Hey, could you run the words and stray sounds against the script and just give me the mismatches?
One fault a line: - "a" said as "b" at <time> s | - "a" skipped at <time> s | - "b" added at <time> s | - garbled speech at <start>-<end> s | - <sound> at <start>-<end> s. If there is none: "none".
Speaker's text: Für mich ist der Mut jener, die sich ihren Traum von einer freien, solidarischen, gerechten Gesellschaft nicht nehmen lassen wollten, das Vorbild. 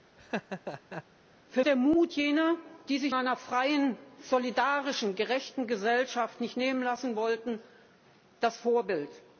- laugh at 0.2-1.0 s
- "mich ist" skipped at 1.6 s
- "ihren Traum von" skipped at 3.1 s